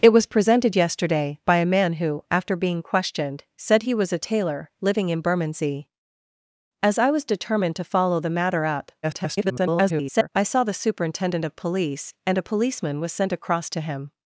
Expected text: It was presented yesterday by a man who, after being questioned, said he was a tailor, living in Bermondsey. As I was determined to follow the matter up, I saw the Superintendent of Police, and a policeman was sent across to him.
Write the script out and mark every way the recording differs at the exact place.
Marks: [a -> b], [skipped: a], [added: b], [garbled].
It was presented yesterday by a man who, after being questioned, said he was a tailor, living in Bermondsey. As I was determined to follow the matter up, [garbled] I saw the Superintendent of Police, and a policeman was sent across to him.